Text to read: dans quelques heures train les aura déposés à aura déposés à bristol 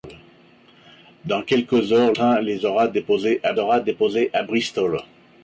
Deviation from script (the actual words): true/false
false